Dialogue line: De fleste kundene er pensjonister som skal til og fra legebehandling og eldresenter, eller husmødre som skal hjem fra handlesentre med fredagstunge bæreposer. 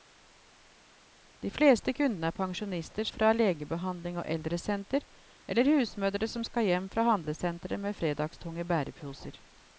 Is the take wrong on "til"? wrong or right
wrong